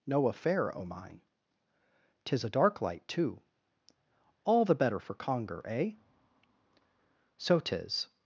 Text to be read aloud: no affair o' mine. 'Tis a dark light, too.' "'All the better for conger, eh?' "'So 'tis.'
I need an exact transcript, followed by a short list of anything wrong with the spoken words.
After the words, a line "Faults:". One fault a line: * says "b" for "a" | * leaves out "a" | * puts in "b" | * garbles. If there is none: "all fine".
no affair o' mine. 'Tis a dark light, too.' "'All the better for conger, eh?' "'So 'tis.'
Faults:
all fine